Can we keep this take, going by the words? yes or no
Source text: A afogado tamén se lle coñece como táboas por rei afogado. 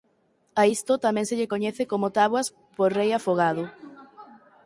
no